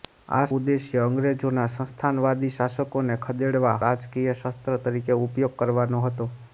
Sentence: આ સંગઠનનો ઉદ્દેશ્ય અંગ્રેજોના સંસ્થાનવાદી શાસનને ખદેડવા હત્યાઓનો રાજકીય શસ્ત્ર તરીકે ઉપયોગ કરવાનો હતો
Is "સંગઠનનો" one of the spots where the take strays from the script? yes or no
yes